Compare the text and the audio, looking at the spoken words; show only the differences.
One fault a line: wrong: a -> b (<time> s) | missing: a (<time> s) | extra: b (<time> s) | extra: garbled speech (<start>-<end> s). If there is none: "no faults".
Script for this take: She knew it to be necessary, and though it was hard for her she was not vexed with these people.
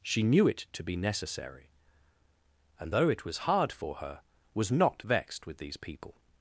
missing: she (4.2 s)